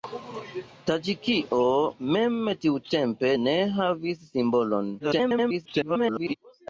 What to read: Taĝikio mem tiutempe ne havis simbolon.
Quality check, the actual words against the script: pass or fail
fail